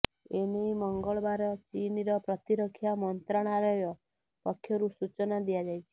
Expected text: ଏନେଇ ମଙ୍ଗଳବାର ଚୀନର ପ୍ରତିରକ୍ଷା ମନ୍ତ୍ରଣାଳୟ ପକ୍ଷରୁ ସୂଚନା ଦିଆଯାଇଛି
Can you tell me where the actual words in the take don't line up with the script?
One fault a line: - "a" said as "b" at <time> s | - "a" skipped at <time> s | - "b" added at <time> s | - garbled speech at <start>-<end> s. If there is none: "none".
none